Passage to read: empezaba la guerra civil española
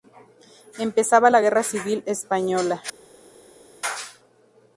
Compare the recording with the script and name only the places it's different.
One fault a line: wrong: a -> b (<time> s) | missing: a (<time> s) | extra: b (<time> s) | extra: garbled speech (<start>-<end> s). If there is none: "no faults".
no faults